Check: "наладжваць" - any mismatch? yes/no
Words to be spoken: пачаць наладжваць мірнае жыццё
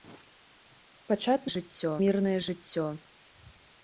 yes